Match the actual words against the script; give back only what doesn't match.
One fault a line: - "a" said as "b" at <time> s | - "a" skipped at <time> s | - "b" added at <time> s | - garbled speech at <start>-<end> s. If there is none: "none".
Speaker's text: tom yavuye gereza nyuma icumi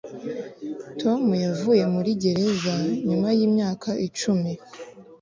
- "muri" added at 1.9 s
- "yimyaka" added at 3.4 s